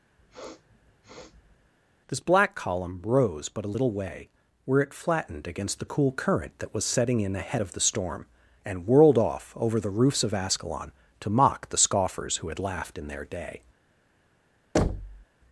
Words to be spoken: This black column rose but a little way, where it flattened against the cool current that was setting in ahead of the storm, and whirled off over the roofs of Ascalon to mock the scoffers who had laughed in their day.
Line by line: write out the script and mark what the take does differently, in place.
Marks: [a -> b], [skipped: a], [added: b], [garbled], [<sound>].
[sniff] This black column rose but a little way, where it flattened against the cool current that was setting in ahead of the storm, and whirled off over the roofs of Ascalon to mock the scoffers who had laughed in their day. [thud]